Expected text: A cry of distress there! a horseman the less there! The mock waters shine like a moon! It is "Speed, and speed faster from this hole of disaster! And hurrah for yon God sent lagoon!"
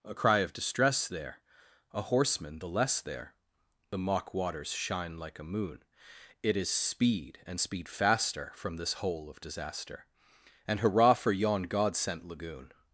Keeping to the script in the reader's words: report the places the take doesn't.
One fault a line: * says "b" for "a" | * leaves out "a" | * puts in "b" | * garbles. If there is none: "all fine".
all fine